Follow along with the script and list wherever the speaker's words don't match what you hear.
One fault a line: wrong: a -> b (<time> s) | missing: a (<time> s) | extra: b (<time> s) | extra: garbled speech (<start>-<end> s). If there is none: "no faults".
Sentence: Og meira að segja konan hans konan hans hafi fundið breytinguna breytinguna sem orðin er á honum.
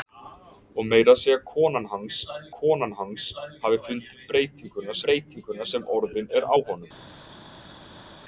no faults